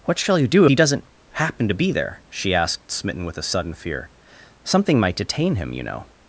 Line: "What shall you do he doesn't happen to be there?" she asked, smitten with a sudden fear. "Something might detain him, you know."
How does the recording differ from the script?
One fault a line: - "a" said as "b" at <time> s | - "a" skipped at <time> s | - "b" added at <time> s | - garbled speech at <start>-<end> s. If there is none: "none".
none